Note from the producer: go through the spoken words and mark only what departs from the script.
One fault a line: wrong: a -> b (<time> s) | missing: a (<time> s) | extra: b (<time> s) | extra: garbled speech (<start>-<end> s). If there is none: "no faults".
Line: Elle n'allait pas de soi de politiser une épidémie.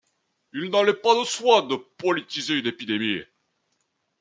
wrong: Elle -> Il (0.5 s)